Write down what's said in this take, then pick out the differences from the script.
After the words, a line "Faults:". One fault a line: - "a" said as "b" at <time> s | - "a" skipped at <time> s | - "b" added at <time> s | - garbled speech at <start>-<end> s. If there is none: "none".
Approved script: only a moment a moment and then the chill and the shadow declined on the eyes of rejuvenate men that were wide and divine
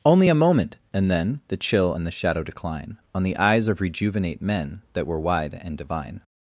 only a moment and then the chill and the shadow decline on the eyes of rejuvenate men that were wide and divine
Faults:
- "a moment" skipped at 0.8 s
- "declined" said as "decline" at 2.4 s